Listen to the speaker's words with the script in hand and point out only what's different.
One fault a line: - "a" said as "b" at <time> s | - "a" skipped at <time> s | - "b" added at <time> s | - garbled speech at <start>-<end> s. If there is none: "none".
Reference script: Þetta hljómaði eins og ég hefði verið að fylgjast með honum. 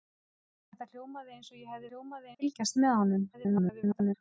- "verið" said as "hljómaði" at 1.9 s
- garbled speech at 3.3-4.1 s